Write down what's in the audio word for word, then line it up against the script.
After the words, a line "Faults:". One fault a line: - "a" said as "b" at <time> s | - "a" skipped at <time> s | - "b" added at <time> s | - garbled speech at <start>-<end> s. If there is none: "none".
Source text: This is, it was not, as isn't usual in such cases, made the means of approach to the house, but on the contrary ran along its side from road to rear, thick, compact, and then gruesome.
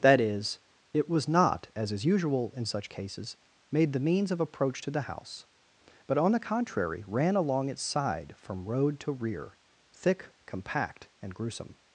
That is, it was not, as is usual in such cases, made the means of approach to the house, but on the contrary ran along its side from road to rear, thick, compact, and gruesome.
Faults:
- "This" said as "That" at 0.0 s
- "isn't" said as "is" at 1.9 s
- "then" skipped at 11.3 s